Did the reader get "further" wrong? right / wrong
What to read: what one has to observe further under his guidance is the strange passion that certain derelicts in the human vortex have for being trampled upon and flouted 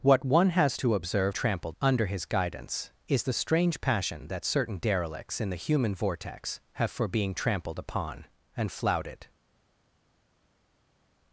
wrong